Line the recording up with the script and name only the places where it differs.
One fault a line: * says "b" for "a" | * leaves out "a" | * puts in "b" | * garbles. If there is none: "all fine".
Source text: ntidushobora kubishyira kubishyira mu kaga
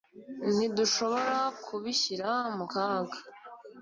* leaves out "kubishyira"